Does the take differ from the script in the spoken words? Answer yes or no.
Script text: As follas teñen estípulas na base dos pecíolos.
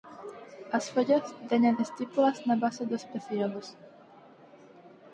no